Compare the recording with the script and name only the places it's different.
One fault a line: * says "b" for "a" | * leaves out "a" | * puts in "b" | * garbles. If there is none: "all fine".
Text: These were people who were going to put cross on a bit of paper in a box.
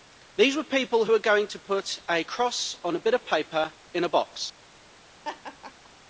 * puts in "a"